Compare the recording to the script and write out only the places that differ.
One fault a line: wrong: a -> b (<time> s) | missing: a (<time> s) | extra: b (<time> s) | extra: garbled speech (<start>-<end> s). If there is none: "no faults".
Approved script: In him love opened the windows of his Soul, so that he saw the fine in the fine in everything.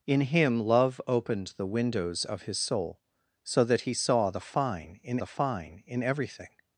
no faults